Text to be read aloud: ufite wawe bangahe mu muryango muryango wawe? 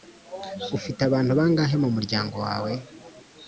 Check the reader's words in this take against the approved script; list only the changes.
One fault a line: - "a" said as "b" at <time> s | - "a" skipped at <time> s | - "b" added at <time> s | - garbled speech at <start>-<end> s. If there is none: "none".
- "wawe" said as "abantu" at 1.1 s
- "muryango" skipped at 2.4 s